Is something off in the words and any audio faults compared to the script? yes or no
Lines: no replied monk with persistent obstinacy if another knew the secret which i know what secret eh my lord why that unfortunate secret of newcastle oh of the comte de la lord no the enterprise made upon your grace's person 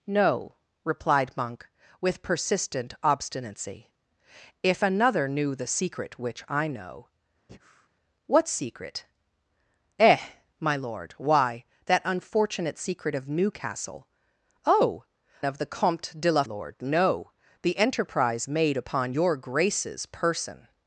yes